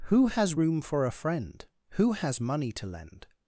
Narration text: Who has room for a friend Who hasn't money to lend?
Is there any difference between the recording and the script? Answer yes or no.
yes